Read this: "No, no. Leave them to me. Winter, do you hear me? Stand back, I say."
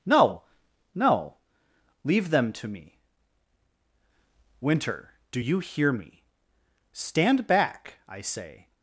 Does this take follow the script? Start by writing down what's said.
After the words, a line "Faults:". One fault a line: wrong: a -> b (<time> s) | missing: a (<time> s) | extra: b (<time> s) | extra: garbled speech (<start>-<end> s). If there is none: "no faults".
"No, no. Leave them to me. Winter, do you hear me? Stand back, I say."
Faults:
no faults